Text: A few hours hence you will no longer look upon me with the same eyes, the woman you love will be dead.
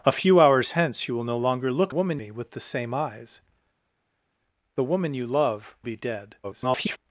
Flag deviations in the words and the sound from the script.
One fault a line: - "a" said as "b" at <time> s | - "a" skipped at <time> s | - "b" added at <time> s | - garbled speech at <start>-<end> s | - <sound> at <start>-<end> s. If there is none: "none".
- "upon" said as "woman" at 1.9 s
- "will" skipped at 5.8 s
- garbled speech at 6.4-7.0 s